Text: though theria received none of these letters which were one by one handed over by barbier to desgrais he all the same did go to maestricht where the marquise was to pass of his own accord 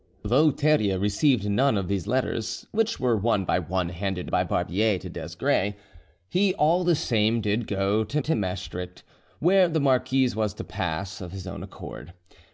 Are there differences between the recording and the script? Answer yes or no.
yes